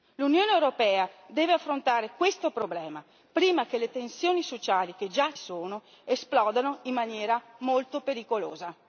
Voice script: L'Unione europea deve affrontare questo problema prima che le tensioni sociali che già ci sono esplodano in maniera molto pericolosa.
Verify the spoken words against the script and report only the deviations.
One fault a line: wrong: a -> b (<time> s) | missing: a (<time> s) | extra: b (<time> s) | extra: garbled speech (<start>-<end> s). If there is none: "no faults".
missing: ci (5.3 s)